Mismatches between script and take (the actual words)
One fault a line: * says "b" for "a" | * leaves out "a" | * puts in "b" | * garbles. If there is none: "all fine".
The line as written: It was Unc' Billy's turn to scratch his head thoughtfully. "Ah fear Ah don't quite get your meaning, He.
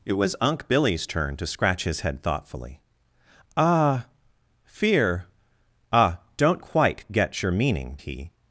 all fine